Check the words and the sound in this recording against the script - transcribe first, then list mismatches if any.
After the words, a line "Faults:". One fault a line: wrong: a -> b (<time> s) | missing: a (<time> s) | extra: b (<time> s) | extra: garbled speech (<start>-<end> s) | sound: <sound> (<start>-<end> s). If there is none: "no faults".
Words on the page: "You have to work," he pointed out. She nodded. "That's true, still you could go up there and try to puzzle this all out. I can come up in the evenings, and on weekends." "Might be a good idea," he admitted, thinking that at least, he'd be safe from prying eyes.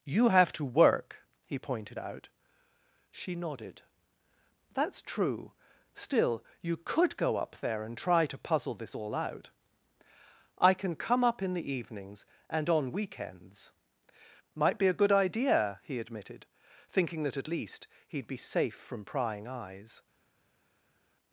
"You have to work," he pointed out. She nodded. "That's true, still you could go up there and try to puzzle this all out. I can come up in the evenings, and on weekends." "Might be a good idea," he admitted, thinking that at least, he'd be safe from prying eyes.
Faults:
no faults